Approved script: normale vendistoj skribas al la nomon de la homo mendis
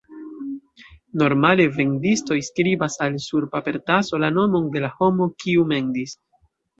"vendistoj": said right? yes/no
yes